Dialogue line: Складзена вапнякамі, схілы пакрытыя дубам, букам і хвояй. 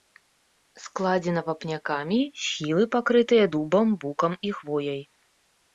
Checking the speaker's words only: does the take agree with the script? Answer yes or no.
yes